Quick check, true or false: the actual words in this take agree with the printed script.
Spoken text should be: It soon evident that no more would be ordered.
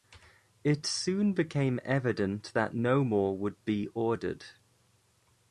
false